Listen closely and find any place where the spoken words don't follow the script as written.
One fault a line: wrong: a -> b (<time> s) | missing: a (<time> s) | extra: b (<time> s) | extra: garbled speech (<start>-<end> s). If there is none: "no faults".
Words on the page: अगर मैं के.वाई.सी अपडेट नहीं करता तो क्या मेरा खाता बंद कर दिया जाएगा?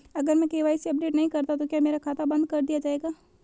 no faults